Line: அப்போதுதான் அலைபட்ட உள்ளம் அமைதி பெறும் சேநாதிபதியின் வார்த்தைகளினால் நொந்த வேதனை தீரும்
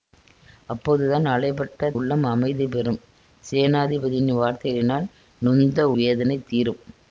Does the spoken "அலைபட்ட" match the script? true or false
true